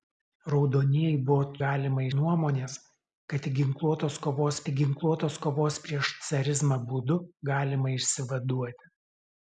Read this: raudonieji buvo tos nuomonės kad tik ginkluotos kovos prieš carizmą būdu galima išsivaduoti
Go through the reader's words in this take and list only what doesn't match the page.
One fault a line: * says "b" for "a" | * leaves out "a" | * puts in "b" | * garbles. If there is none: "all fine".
* says "galima" for "tos"
* puts in "tik ginkluotos kovos"